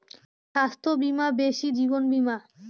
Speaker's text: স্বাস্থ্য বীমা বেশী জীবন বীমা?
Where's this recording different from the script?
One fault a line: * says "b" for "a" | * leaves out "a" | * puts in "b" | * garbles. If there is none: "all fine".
all fine